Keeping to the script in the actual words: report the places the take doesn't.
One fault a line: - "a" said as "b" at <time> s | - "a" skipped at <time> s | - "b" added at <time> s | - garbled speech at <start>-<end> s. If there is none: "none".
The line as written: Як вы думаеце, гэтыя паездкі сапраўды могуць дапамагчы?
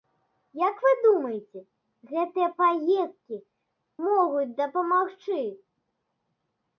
- "сапраўды" skipped at 3.4 s